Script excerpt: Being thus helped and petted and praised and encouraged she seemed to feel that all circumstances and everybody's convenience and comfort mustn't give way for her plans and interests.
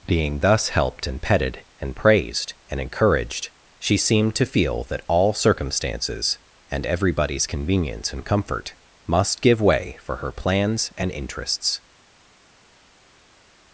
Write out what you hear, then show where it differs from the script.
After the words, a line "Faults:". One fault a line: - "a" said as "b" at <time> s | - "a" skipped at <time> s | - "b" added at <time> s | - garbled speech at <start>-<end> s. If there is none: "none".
Being thus helped and petted and praised and encouraged she seemed to feel that all circumstances and everybody's convenience and comfort must give way for her plans and interests.
Faults:
- "mustn't" said as "must" at 9.1 s